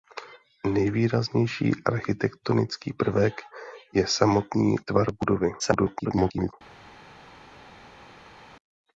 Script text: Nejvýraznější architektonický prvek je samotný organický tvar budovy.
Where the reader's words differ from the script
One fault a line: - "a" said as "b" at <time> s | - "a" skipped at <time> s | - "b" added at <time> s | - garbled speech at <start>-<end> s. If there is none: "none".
- "organický" skipped at 4.8 s
- garbled speech at 5.6-6.5 s